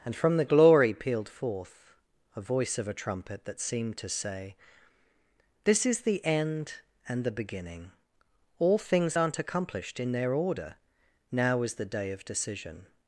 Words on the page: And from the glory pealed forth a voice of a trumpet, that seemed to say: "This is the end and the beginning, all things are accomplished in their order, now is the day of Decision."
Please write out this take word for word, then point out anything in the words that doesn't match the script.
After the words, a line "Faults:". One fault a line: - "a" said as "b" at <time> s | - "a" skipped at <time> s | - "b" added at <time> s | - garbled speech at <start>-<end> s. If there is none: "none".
And from the glory pealed forth a voice of a trumpet, that seemed to say: "This is the end and the beginning, all things aren't accomplished in their order, now is the day of Decision."
Faults:
- "are" said as "aren't" at 9.1 s